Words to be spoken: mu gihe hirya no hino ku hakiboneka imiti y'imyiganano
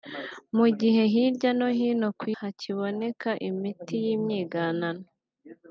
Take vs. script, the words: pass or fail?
pass